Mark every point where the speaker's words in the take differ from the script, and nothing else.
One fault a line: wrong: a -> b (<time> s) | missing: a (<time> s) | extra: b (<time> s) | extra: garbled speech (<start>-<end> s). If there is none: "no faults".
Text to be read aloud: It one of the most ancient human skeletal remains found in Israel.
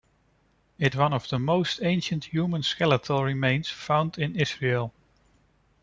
no faults